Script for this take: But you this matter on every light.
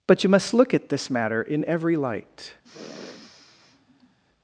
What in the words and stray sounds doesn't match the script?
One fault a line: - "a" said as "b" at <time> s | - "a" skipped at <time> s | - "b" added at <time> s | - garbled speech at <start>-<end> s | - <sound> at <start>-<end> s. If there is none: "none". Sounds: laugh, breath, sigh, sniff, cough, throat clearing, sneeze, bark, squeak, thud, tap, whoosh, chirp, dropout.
- "must look at" added at 0.3 s
- "on" said as "in" at 1.4 s
- sniff at 2.6-4.2 s